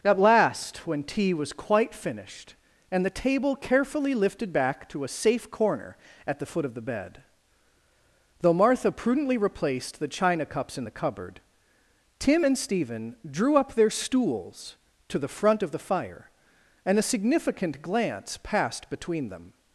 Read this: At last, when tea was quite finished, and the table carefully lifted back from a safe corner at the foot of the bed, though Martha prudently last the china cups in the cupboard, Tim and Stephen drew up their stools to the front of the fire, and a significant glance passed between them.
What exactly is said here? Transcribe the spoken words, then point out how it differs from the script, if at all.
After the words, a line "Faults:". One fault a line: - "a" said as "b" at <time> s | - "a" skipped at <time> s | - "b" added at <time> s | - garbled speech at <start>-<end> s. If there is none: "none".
At last, when tea was quite finished, and the table carefully lifted back to a safe corner at the foot of the bed, though Martha prudently replaced the china cups in the cupboard, Tim and Stephen drew up their stools to the front of the fire, and a significant glance passed between them.
Faults:
- "from" said as "to" at 4.9 s
- "last" said as "replaced" at 9.4 s